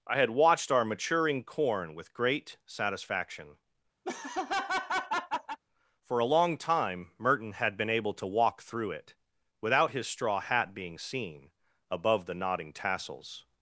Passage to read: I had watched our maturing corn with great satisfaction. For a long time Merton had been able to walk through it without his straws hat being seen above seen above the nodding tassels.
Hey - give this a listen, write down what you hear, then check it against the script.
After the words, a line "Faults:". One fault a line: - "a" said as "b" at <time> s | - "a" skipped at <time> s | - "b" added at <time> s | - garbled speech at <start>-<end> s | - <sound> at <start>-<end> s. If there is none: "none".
I had watched our maturing corn with great satisfaction. For a long time Merton had been able to walk through it without his straw hat being seen above the nodding tassels.
Faults:
- laugh at 4.0-5.6 s
- "straws" said as "straw" at 10.1 s
- "seen above" skipped at 12.3 s